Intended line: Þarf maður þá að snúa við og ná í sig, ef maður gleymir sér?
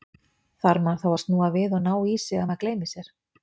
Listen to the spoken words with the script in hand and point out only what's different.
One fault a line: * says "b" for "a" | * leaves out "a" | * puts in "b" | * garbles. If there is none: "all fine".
all fine